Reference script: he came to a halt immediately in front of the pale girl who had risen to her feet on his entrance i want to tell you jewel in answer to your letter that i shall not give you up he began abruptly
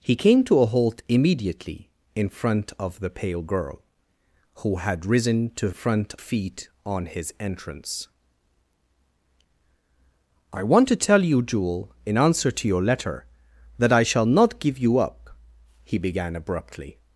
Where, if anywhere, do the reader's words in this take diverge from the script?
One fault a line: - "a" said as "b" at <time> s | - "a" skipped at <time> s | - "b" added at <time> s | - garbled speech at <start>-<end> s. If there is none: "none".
- "her" said as "front" at 5.7 s